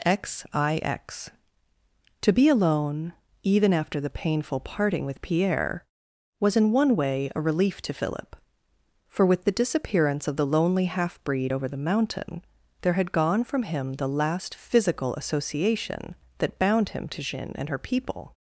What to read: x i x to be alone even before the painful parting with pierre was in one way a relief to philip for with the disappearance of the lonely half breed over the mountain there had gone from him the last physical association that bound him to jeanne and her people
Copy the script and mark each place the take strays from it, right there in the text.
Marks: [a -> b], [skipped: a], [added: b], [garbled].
x i x to be alone even [before -> after] the painful parting with pierre was in one way a relief to philip for with the disappearance of the lonely half breed over the mountain there had gone from him the last physical association that bound him to jeanne and her people